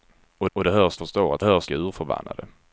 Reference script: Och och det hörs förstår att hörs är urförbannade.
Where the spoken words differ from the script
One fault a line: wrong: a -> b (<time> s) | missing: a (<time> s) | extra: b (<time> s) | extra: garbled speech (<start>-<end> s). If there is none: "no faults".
no faults